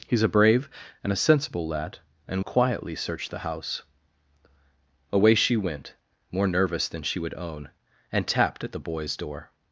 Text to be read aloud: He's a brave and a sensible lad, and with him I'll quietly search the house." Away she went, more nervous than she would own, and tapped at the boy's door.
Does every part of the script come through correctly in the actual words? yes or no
no